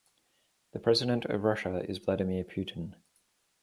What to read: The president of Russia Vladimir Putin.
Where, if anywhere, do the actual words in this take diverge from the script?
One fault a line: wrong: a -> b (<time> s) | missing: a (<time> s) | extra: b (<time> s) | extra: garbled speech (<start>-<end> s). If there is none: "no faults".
extra: is (1.9 s)